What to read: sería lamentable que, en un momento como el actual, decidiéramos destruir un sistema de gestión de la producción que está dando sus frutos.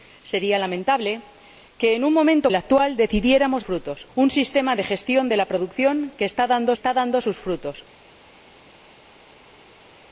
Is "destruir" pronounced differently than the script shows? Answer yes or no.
yes